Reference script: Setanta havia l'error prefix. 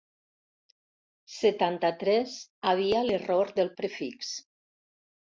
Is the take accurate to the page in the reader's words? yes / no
no